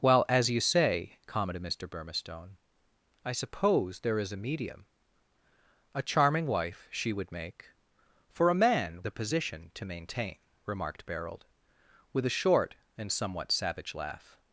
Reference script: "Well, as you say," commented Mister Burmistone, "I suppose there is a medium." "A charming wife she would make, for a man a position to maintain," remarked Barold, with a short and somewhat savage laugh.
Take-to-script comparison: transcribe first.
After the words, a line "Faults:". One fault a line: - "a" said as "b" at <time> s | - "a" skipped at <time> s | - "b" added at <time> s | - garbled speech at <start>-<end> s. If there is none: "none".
"Well, as you say," commented Mister Burmistone, "I suppose there is a medium." "A charming wife she would make, for a man a position to maintain," remarked Barold, with a short and somewhat savage laugh.
Faults:
none